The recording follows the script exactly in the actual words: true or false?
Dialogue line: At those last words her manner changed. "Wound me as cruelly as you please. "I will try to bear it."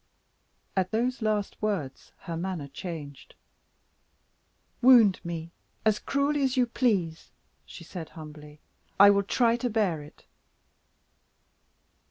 false